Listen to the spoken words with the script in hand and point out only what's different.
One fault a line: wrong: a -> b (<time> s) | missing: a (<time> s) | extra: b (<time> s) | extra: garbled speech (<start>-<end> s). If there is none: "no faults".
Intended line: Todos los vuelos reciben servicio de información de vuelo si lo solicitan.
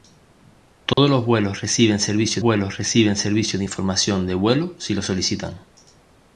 extra: vuelos reciben servicio (2.4 s)